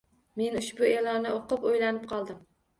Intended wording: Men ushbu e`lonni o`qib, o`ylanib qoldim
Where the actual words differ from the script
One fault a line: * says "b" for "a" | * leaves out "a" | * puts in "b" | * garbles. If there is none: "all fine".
all fine